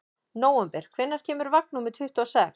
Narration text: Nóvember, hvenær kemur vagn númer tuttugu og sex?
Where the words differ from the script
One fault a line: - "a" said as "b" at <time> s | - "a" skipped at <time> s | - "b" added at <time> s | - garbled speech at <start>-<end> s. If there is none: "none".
none